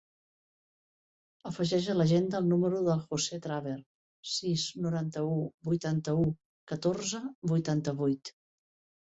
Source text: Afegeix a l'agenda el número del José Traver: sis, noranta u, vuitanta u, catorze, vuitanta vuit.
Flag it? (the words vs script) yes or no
no